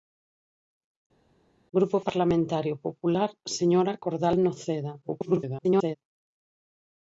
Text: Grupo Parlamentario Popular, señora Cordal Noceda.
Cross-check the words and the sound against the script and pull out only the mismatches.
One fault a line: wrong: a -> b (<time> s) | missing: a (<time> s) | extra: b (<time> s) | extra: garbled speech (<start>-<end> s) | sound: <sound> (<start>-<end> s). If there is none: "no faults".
extra: garbled speech (5.0-6.0 s)